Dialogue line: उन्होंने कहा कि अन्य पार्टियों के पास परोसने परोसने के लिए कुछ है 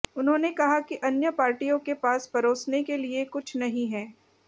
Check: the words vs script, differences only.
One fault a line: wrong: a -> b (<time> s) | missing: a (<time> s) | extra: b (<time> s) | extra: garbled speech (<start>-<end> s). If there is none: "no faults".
missing: परोसने (2.8 s)
extra: नहीं (3.6 s)